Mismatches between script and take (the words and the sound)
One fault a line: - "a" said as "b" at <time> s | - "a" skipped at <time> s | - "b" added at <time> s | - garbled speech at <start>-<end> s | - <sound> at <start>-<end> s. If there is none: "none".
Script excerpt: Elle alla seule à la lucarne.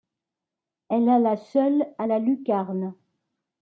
none